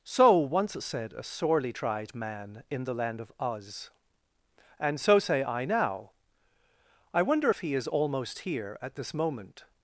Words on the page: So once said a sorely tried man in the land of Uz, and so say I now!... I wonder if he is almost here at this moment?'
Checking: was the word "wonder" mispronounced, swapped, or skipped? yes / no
no